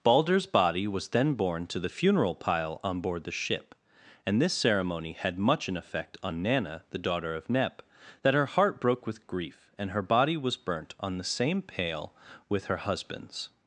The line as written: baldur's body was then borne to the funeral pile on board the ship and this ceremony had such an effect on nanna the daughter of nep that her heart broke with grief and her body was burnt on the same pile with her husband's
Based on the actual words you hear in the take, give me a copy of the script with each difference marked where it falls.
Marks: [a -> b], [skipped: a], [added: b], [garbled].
baldur's body was then borne to the funeral pile on board the ship and this ceremony had [such -> much] an effect on nanna the daughter of nep that her heart broke with grief and her body was burnt on the same [pile -> pale] with her husband's